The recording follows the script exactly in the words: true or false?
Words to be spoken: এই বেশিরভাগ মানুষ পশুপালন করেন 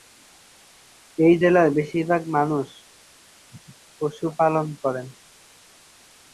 false